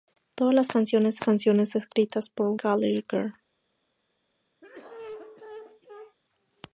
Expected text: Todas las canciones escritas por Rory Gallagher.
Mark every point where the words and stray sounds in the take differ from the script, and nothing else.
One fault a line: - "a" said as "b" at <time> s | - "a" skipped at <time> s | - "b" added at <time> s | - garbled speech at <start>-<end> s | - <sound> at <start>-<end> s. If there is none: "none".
- "canciones" added at 1.2 s
- "Rory" skipped at 2.6 s
- cough at 4.6-6.2 s